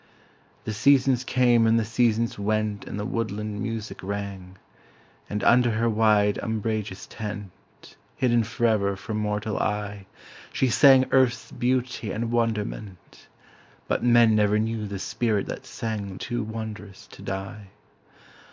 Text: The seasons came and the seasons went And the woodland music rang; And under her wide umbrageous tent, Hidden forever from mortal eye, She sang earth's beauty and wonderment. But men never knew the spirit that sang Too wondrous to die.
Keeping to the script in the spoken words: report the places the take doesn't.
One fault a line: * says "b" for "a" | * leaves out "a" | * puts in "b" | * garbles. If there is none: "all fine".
all fine